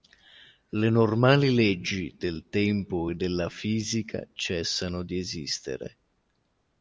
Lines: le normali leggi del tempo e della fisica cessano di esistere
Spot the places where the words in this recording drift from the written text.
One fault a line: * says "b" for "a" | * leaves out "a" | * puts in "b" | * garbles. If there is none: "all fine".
all fine